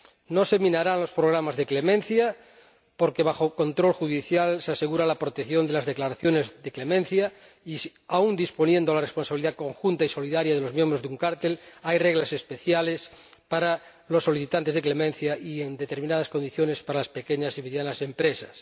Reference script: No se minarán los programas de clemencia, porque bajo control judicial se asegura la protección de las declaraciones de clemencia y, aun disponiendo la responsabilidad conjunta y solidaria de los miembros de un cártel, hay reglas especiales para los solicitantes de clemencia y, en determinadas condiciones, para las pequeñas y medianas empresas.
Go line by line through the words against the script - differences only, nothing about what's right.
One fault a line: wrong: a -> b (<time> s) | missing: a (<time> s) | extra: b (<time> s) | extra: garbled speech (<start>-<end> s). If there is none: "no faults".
no faults